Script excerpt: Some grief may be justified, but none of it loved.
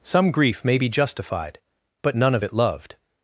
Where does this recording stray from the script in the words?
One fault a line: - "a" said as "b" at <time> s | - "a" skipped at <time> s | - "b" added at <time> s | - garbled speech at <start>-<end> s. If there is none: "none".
none